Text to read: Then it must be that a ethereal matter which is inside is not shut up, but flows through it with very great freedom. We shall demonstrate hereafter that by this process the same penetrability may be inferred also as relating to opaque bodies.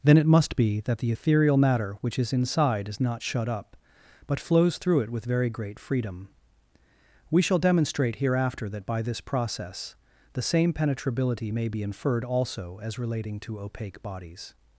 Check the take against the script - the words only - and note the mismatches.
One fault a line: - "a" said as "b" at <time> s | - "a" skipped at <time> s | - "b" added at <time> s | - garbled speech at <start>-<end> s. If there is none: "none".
- "a" said as "the" at 1.0 s